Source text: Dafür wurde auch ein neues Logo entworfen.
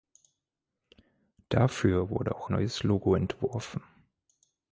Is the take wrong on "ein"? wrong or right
wrong